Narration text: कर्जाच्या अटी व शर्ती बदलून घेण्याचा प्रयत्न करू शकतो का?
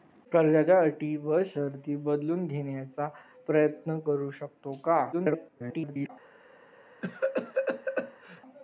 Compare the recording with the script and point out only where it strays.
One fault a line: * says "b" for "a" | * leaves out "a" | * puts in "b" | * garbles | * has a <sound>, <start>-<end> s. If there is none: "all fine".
* garbles
* has a cough, 7.0-8.4 s